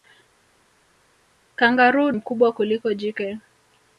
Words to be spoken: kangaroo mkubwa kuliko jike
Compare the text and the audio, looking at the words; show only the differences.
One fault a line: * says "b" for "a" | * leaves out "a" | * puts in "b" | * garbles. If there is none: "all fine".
all fine